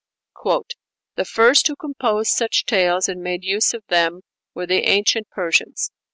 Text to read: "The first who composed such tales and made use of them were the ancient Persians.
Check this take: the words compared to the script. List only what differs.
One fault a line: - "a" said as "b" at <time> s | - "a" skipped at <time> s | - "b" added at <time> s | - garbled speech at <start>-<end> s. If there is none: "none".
none